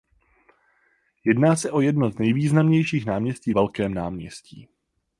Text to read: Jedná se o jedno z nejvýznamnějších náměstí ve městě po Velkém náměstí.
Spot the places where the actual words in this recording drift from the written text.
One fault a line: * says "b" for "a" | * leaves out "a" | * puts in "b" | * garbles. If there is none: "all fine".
* leaves out "ve městě po"